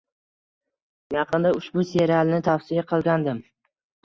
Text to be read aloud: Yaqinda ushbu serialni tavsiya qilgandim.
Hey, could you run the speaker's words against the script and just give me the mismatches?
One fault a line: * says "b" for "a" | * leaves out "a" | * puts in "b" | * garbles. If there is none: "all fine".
all fine